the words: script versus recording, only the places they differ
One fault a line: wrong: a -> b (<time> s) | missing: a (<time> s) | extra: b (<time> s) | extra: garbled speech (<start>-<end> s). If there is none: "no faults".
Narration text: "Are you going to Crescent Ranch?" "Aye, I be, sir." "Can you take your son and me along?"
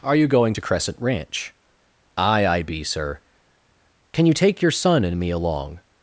no faults